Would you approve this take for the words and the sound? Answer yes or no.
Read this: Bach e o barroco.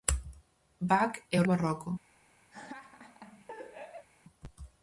no